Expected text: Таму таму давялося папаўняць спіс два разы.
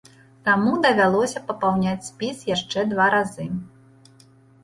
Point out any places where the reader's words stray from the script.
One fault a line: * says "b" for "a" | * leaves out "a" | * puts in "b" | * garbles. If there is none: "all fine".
* leaves out "таму"
* puts in "яшчэ"